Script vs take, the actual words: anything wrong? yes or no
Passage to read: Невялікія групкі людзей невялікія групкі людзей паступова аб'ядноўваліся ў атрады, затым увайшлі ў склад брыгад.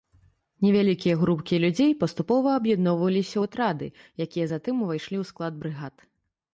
yes